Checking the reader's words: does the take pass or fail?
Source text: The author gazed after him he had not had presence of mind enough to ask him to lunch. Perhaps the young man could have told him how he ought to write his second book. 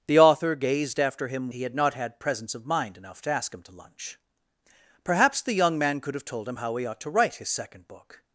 pass